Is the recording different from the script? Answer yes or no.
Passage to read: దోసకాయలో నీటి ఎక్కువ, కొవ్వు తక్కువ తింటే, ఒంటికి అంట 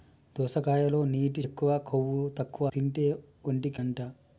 no